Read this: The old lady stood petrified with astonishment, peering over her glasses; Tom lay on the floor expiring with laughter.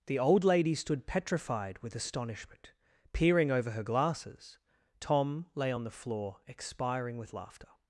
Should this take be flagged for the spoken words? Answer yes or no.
no